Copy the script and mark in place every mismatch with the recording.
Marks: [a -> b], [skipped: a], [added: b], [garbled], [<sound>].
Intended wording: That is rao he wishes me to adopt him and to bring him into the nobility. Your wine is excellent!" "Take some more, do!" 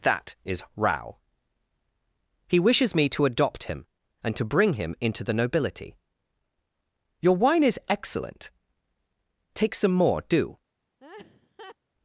That is rao he wishes me to adopt him and to bring him into the nobility. Your wine is excellent!" "Take some more, do!" [laugh]